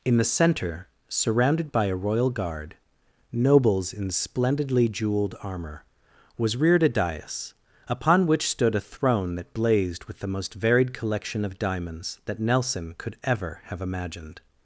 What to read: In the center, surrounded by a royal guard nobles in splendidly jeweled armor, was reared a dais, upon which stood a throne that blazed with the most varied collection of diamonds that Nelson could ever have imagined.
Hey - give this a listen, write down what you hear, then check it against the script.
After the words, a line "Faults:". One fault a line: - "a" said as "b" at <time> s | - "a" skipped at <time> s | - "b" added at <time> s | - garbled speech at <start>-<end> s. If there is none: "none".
In the center, surrounded by a royal guard nobles in splendidly jeweled armor, was reared a dais, upon which stood a throne that blazed with the most varied collection of diamonds that Nelson could ever have imagined.
Faults:
none